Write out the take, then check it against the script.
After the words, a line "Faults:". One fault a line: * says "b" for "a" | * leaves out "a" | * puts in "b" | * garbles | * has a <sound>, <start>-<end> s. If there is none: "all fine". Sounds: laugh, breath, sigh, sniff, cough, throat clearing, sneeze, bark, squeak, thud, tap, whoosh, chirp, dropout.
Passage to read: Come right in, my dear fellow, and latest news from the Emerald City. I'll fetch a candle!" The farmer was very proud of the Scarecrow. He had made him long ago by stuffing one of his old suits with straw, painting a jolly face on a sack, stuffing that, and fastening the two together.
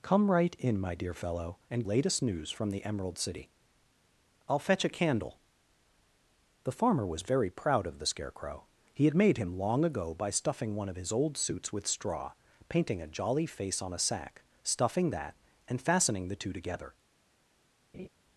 Come right in, my dear fellow, and latest news from the Emerald City. I'll fetch a candle!" The farmer was very proud of the Scarecrow. He had made him long ago by stuffing one of his old suits with straw, painting a jolly face on a sack, stuffing that, and fastening the two together.
Faults:
* has a laugh, 17.9-18.1 s